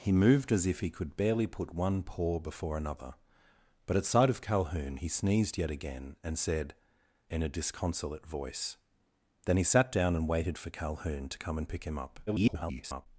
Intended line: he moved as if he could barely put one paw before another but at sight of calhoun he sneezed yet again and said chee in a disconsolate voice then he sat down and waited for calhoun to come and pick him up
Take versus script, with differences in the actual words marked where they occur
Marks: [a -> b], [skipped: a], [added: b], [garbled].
he moved as if he could barely put one paw before another but at sight of calhoun he sneezed yet again and said [skipped: chee] in a disconsolate voice then he sat down and waited for calhoun to come and pick him up [garbled]